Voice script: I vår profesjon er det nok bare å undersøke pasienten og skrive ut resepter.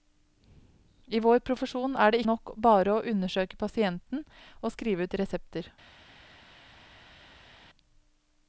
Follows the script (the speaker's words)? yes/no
yes